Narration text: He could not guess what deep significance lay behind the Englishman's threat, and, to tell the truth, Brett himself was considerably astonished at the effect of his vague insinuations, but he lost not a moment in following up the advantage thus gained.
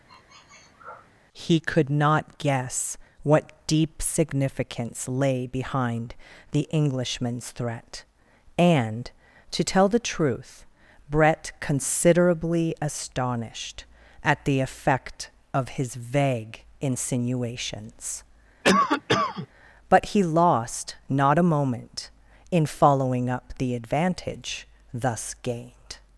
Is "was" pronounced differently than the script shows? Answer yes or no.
yes